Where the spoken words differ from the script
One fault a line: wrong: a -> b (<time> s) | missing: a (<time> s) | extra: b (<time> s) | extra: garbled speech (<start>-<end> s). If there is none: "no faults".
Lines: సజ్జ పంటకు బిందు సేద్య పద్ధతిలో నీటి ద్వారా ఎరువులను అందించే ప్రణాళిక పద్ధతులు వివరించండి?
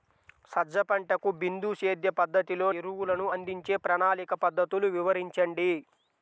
missing: నీటి ద్వారా (2.7 s)